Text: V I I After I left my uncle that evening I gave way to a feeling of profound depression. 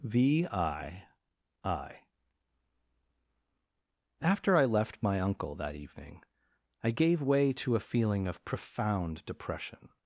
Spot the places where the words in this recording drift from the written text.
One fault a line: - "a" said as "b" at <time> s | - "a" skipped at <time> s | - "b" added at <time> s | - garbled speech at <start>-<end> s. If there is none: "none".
none